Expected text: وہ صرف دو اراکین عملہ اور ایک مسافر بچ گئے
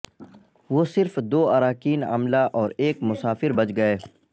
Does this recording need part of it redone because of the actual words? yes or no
no